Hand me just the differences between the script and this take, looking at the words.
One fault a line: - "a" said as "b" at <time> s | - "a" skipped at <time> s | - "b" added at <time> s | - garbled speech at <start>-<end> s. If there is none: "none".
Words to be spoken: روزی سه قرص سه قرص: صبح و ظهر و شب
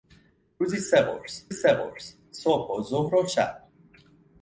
none